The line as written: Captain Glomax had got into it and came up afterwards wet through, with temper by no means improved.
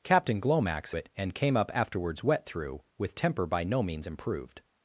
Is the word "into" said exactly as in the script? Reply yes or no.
no